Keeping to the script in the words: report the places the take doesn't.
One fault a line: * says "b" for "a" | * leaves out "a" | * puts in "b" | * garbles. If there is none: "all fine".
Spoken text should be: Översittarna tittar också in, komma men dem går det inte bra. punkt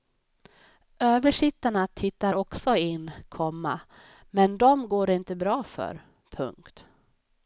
* puts in "för"